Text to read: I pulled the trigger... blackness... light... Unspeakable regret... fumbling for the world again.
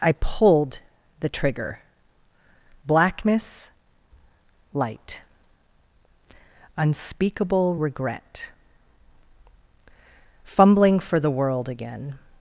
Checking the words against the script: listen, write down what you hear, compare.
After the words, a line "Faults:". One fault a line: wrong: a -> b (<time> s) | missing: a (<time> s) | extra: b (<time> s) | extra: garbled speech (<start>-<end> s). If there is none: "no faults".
I pulled the trigger... blackness... light... Unspeakable regret... fumbling for the world again.
Faults:
no faults